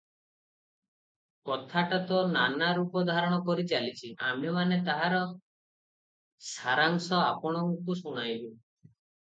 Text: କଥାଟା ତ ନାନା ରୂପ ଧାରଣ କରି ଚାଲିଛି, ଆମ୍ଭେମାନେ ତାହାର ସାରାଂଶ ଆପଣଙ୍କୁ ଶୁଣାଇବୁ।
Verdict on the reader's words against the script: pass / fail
pass